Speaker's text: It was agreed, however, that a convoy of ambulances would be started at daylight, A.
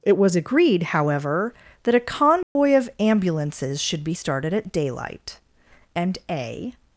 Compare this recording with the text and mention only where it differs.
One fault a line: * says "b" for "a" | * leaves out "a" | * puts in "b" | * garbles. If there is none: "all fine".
* says "should" for "would"
* puts in "and"